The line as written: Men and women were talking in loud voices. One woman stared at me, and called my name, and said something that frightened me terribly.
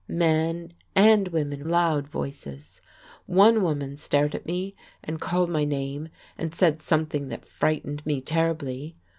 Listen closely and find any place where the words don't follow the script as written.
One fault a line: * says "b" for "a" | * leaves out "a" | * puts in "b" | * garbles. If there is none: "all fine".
* leaves out "were talking in"